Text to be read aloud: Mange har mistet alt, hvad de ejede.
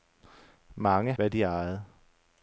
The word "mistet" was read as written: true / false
false